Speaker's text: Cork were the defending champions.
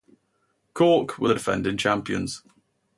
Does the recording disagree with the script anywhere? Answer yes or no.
no